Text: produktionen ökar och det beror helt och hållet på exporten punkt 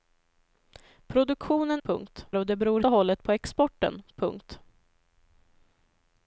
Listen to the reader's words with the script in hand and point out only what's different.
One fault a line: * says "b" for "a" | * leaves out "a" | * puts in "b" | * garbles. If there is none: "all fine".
* says "punkt" for "ökar"
* leaves out "helt"